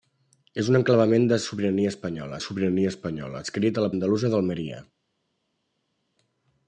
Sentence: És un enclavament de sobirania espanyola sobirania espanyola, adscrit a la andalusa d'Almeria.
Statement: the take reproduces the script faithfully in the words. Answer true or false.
true